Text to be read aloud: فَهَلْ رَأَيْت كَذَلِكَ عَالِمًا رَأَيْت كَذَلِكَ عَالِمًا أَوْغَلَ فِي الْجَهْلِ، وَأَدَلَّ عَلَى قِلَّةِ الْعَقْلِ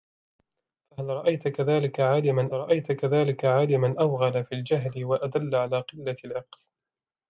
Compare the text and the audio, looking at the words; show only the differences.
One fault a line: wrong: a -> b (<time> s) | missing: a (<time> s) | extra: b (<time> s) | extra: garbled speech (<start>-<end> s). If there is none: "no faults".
no faults